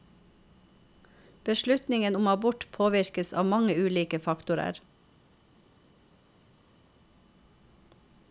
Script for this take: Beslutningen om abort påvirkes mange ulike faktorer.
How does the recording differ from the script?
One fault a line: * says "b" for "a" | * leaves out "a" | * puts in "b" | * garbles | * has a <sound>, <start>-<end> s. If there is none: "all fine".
* puts in "av"